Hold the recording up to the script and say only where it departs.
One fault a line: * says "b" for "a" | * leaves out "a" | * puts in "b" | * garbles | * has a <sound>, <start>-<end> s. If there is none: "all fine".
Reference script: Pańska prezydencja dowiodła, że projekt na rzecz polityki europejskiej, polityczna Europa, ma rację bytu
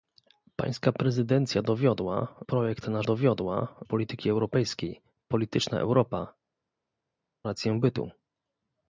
* leaves out "że"
* says "dowiodła" for "rzecz"
* leaves out "ma"